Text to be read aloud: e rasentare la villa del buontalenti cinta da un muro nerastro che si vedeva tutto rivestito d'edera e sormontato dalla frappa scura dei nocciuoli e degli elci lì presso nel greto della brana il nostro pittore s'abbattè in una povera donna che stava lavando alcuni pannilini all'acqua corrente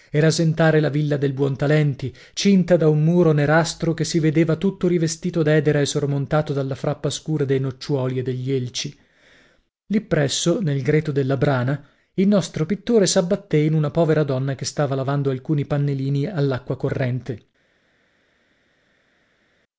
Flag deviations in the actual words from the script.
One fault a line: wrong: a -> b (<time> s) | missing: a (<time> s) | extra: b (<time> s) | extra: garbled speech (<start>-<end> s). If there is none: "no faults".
no faults